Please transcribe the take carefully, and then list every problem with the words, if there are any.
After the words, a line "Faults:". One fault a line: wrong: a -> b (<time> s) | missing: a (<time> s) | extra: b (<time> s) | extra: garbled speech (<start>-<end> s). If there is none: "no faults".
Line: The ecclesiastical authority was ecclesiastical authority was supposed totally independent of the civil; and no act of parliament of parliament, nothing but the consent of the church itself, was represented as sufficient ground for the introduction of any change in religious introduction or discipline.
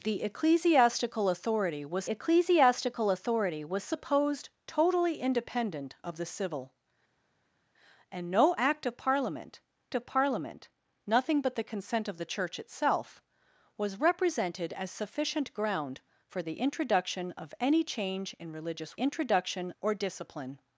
The ecclesiastical authority was ecclesiastical authority was supposed totally independent of the civil; and no act of parliament of parliament, nothing but the consent of the church itself, was represented as sufficient ground for the introduction of any change in religious introduction or discipline.
Faults:
no faults